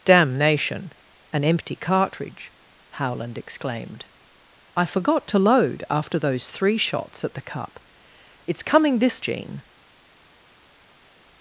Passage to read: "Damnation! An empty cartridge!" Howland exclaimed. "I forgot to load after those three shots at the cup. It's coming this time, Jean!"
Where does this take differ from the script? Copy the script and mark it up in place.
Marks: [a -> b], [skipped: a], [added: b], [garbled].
"Damnation! An empty cartridge!" Howland exclaimed. "I forgot to load after those three shots at the cup. It's coming this [skipped: time,] Jean!"